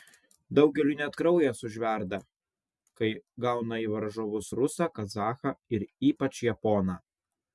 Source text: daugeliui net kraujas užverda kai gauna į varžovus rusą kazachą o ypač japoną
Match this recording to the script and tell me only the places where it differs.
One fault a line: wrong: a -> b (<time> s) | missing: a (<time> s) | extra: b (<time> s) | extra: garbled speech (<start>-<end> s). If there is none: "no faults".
wrong: o -> ir (5.8 s)